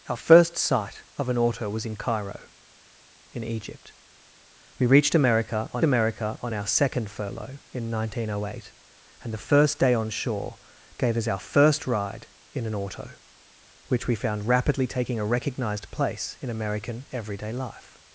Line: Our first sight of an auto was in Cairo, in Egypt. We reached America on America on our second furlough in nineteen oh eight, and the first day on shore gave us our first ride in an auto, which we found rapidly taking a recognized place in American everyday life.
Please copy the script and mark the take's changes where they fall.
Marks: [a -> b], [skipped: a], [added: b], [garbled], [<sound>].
Our first sight of an auto was in Cairo, in Egypt. We reached America on America on our second furlough in nineteen oh eight, and the first day on shore gave us our first ride in an auto, which we found rapidly taking a recognized place in American everyday life.